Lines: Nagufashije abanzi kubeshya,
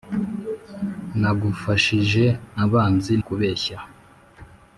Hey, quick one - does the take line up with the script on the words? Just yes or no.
yes